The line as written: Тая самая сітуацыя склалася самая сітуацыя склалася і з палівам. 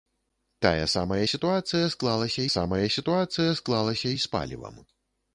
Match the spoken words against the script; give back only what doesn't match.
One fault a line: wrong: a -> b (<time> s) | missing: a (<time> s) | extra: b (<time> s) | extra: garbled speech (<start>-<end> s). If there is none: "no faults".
no faults